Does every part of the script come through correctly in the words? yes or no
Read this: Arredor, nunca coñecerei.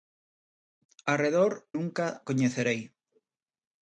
yes